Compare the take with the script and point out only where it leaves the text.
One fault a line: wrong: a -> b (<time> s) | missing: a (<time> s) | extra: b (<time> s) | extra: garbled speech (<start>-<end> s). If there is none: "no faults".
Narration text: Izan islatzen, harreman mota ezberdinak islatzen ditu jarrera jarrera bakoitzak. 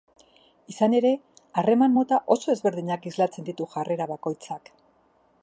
wrong: islatzen -> ere (1.0 s)
extra: oso (2.4 s)
missing: jarrera (4.1 s)